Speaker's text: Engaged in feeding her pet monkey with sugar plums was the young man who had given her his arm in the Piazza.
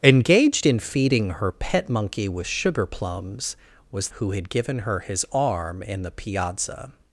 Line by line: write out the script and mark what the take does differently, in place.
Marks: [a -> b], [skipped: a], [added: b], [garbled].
Engaged in feeding her pet monkey with sugar plums was [skipped: the young man] who had given her his arm in the Piazza.